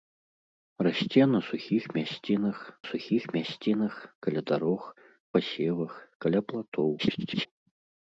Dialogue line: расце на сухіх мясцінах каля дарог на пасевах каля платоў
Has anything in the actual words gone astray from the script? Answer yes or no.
yes